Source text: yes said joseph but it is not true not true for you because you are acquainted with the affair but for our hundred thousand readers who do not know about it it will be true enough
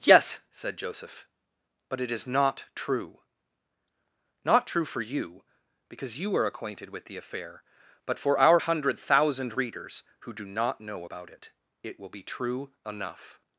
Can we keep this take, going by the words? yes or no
yes